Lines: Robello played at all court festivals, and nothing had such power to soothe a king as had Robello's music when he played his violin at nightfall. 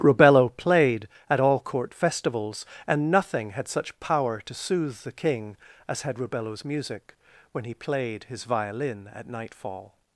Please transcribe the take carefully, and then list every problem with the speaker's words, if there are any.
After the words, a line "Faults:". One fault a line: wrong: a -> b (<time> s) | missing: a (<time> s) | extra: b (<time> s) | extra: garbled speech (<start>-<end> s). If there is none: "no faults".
Robello played at all court festivals, and nothing had such power to soothe the king as had Robello's music when he played his violin at nightfall.
Faults:
wrong: a -> the (5.0 s)